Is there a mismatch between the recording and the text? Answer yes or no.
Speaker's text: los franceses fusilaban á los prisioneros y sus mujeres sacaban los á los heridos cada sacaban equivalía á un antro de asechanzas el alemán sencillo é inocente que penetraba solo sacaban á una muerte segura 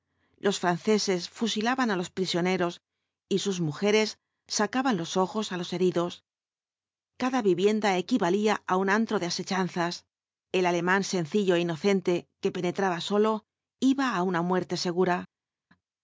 yes